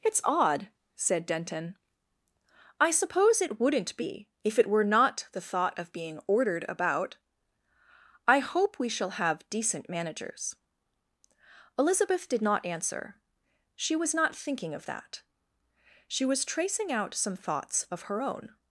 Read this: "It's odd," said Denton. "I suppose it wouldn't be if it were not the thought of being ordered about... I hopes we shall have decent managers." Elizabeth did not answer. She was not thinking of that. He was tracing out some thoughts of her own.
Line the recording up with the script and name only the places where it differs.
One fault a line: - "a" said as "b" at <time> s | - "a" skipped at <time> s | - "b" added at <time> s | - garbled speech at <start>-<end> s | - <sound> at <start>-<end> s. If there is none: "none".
- "hopes" said as "hope" at 8.4 s
- "He" said as "She" at 16.1 s